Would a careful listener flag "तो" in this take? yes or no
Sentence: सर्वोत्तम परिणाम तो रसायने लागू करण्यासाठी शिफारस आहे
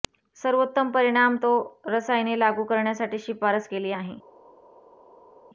no